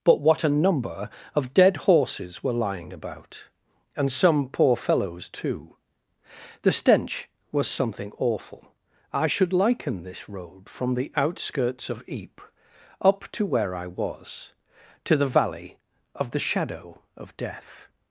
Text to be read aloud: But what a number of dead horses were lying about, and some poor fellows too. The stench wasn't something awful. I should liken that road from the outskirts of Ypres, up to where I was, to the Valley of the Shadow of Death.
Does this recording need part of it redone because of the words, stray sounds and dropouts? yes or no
yes